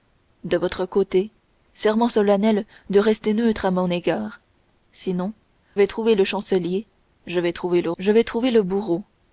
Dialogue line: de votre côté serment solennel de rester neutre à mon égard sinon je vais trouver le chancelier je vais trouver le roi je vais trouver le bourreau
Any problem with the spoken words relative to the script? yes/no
yes